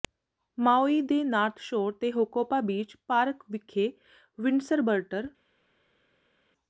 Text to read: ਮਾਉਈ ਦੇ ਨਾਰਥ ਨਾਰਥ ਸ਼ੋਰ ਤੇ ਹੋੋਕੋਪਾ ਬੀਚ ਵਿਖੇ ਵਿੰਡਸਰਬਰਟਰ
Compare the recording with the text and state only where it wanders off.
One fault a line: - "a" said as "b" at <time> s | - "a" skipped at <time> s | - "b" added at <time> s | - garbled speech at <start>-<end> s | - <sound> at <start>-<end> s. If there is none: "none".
- "ਨਾਰਥ" skipped at 1.6 s
- "ਪਾਰਕ" added at 3.1 s